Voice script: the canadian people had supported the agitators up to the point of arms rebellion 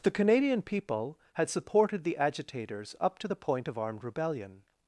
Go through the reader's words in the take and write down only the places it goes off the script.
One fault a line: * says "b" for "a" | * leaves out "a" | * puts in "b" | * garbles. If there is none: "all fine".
* says "armed" for "arms"